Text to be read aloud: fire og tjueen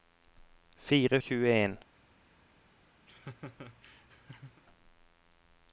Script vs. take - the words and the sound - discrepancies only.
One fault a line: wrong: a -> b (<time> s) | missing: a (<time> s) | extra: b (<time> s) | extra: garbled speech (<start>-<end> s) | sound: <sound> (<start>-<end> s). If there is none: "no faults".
sound: laugh (3.1-4.6 s)